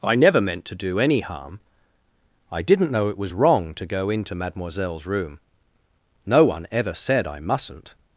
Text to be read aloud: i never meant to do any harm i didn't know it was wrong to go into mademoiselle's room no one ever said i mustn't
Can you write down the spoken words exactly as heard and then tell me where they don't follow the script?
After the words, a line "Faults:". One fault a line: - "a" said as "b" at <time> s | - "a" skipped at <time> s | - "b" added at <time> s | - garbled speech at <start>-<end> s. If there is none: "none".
i never meant to do any harm i didn't know it was wrong to go into mademoiselle's room no one ever said i mustn't
Faults:
none